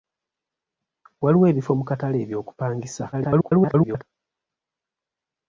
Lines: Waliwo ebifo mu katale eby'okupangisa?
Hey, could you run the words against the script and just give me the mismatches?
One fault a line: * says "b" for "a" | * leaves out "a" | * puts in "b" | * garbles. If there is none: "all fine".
* garbles